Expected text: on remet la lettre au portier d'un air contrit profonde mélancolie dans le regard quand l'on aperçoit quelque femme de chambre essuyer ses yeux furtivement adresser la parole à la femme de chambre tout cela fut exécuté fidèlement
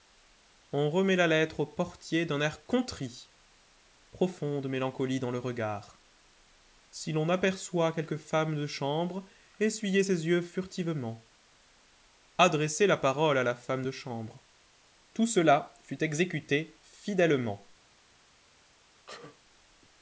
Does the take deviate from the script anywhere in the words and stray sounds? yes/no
yes